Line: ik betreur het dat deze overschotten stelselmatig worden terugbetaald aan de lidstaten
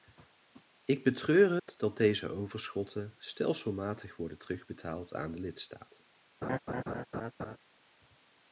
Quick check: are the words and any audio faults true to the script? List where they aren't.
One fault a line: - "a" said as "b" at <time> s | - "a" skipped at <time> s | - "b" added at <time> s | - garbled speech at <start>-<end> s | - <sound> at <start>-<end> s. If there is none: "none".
- dropout at 1.6-1.7 s
- laugh at 6.4-7.6 s